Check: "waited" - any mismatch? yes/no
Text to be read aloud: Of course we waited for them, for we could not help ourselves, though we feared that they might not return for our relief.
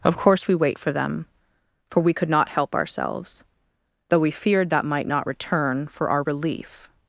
yes